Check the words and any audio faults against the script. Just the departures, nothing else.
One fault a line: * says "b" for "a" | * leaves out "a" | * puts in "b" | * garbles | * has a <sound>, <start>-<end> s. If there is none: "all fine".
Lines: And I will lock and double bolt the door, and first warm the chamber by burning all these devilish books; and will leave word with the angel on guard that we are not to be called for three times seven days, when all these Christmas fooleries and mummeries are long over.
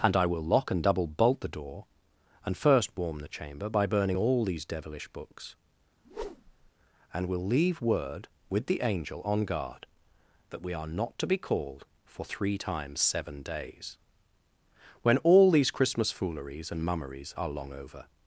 * has a whoosh, 6.0-6.7 s